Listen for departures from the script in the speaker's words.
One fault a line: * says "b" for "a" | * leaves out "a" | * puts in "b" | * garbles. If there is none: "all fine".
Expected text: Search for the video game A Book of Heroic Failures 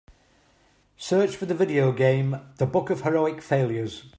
* says "The" for "A"